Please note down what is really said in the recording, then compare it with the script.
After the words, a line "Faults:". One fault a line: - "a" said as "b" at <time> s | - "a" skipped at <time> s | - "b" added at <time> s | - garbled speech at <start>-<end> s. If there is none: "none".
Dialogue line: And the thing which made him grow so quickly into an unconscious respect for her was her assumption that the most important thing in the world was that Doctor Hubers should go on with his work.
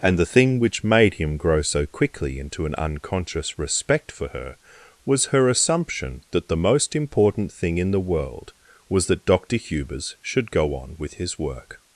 And the thing which made him grow so quickly into an unconscious respect for her was her assumption that the most important thing in the world was that Doctor Hubers should go on with his work.
Faults:
none